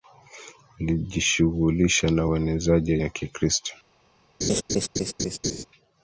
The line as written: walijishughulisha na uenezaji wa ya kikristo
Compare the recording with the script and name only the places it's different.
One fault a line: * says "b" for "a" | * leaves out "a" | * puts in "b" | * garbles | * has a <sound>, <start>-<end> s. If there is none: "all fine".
* has a laugh, 4.4-5.7 s